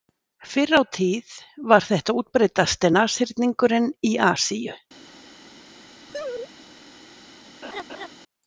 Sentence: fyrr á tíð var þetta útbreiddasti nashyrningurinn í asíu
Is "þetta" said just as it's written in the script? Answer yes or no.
yes